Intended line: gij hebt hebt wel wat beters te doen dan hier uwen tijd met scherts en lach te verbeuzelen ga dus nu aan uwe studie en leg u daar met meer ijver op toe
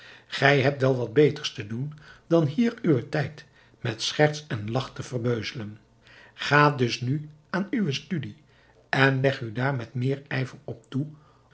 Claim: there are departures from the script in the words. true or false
true